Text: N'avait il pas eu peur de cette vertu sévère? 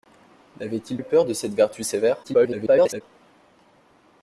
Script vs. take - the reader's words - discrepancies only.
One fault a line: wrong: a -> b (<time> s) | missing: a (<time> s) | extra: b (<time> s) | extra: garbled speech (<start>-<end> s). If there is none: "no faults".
missing: pas (1.0 s)
extra: garbled speech (2.2-3.0 s)